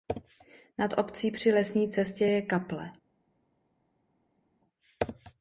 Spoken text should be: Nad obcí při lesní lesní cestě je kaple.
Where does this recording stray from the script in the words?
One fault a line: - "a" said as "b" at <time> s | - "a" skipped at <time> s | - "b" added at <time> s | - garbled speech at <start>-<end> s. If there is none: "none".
- "lesní" skipped at 1.9 s